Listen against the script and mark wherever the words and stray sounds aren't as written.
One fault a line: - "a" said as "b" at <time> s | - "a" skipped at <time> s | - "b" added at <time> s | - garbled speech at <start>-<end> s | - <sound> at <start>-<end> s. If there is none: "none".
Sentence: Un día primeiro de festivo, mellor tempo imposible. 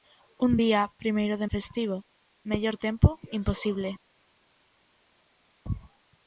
none